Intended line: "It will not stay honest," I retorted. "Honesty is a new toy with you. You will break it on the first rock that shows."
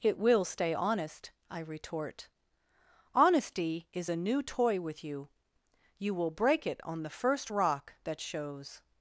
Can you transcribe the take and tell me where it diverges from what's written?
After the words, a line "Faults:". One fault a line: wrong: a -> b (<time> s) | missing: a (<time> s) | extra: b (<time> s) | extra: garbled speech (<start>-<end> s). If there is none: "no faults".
"It will stay honest," I retort. "Honesty is a new toy with you. You will break it on the first rock that shows."
Faults:
missing: not (0.5 s)
wrong: retorted -> retort (1.6 s)